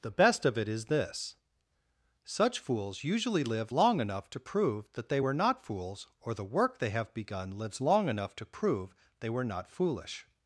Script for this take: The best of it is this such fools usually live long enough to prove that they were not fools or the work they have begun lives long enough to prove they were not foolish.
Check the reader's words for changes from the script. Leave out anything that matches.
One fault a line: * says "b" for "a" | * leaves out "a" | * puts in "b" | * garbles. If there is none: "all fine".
all fine